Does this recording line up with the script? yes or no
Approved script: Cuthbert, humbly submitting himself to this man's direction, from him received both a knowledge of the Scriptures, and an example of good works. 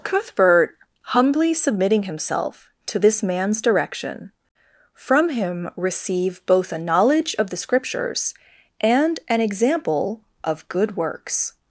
no